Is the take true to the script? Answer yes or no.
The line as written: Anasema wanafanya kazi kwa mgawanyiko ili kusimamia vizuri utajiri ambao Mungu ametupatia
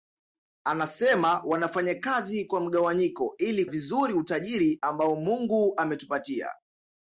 no